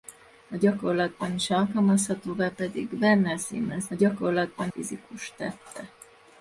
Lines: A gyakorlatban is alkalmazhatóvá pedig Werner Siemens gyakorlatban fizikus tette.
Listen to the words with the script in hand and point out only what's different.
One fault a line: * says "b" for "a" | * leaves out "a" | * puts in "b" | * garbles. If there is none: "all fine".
all fine